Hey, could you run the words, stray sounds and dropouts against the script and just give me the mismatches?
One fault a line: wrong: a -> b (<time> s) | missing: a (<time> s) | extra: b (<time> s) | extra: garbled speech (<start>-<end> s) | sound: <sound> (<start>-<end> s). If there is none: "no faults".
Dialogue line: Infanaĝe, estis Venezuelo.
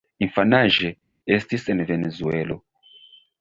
extra: en (1.7 s)